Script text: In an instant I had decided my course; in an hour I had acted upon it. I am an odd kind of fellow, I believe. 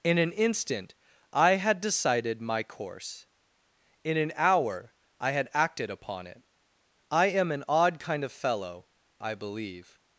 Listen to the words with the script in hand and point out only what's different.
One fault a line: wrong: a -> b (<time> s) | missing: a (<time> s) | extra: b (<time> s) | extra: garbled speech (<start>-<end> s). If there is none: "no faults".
no faults